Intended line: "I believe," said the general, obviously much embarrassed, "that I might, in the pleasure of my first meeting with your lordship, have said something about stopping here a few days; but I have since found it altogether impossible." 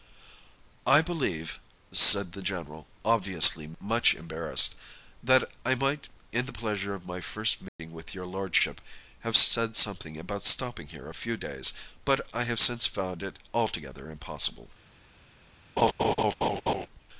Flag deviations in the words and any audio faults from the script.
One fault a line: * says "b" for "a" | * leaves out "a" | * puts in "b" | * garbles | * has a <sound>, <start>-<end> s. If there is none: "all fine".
* has a dropout, 7.7-7.8 s
* has a laugh, 15.8-16.9 s